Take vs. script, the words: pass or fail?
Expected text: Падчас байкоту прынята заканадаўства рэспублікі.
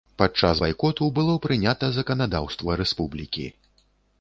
fail